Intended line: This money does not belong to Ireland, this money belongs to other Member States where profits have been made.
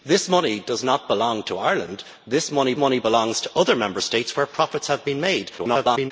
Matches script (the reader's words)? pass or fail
fail